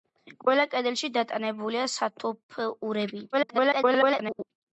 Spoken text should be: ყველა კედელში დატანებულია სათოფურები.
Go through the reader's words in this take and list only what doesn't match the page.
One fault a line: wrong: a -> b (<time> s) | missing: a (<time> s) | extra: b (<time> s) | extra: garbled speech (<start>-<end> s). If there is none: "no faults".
extra: garbled speech (3.3-4.5 s)